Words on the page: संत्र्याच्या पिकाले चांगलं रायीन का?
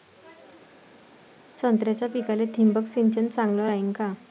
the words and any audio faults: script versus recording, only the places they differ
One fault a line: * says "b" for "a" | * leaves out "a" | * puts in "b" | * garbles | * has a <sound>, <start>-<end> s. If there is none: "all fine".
* puts in "थिंबक सिंचन"